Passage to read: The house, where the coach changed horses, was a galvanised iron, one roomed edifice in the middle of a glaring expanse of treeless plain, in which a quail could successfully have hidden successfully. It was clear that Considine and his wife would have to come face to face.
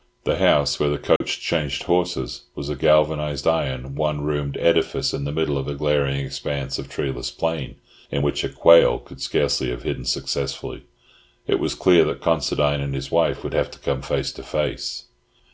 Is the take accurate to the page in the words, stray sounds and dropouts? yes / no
no